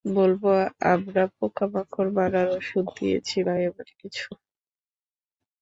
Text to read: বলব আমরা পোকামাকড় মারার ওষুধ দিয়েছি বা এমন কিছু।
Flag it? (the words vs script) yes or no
no